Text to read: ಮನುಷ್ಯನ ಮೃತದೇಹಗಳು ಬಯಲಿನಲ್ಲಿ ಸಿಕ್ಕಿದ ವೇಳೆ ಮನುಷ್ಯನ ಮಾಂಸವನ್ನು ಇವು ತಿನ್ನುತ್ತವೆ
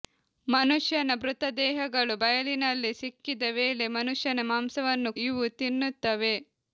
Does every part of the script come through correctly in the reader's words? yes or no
yes